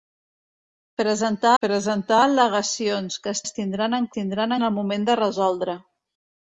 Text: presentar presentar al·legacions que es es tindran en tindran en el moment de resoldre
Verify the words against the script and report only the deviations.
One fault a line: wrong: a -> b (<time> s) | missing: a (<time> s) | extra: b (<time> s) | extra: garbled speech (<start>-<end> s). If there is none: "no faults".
no faults